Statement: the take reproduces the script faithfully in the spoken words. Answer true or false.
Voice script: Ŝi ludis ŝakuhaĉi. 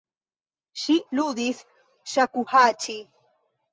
true